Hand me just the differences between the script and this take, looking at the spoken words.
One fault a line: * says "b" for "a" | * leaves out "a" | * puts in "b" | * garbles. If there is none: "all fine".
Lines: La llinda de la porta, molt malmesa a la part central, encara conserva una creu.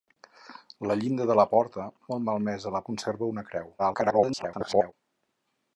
* leaves out "part central encara"
* garbles